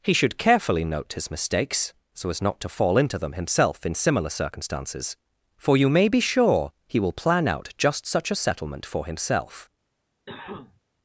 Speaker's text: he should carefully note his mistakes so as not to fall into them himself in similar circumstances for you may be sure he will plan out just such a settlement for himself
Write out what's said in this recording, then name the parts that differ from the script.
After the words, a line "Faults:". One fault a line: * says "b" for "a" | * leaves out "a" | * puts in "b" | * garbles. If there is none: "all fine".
he should carefully note his mistakes so as not to fall into them himself in similar circumstances for you may be sure he will plan out just such a settlement for himself
Faults:
all fine